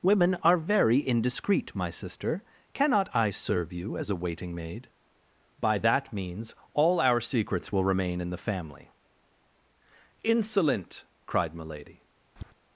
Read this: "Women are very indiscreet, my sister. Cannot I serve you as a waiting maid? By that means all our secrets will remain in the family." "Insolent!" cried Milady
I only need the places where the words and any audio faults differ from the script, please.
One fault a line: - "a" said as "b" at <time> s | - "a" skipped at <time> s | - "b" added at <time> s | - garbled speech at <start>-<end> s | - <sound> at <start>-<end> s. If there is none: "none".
- tap at 12.4-12.5 s